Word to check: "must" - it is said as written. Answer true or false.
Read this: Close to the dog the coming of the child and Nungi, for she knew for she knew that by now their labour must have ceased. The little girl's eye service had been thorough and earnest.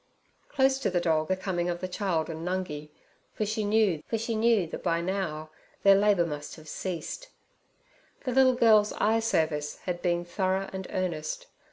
true